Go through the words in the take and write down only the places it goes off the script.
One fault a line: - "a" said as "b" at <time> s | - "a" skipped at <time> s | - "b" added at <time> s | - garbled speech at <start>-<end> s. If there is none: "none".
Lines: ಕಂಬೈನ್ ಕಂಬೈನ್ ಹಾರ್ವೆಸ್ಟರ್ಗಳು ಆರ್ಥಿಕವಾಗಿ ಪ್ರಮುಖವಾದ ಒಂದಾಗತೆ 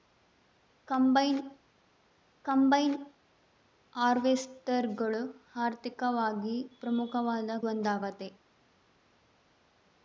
none